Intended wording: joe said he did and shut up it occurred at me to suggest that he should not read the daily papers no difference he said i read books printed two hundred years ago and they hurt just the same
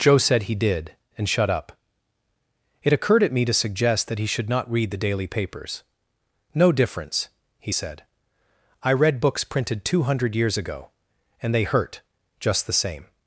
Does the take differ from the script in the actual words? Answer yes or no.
no